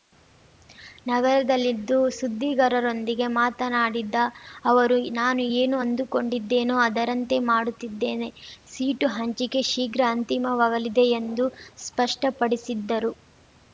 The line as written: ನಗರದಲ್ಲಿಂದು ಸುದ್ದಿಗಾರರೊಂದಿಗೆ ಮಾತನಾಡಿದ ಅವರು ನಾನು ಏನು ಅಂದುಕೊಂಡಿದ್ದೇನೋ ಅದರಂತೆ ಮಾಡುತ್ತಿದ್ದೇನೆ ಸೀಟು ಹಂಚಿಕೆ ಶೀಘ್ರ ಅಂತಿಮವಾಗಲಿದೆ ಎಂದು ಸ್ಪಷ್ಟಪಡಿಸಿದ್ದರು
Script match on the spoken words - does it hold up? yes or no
yes